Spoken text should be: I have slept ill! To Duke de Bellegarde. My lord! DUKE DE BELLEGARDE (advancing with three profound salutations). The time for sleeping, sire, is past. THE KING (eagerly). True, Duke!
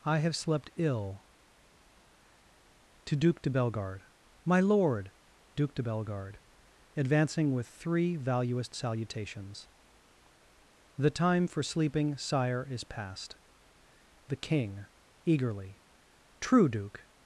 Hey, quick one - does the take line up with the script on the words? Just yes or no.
no